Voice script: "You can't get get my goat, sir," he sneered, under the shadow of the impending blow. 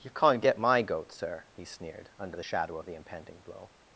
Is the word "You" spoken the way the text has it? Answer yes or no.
yes